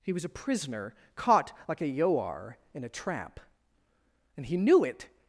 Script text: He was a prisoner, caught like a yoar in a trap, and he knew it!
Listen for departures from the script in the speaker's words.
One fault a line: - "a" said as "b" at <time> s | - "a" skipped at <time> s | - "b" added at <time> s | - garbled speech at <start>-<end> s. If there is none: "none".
none